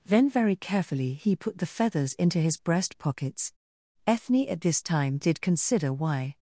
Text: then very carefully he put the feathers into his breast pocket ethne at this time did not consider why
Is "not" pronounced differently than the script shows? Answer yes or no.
yes